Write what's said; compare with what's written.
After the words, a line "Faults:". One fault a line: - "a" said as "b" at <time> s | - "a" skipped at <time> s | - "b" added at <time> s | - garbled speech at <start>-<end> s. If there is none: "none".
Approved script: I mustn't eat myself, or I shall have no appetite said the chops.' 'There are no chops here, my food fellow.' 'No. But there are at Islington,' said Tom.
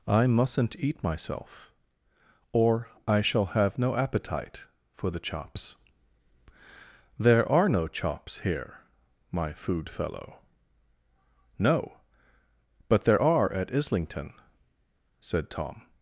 I mustn't eat myself, or I shall have no appetite for the chops.' 'There are no chops here, my food fellow.' 'No. But there are at Islington,' said Tom.
Faults:
- "said" said as "for" at 4.9 s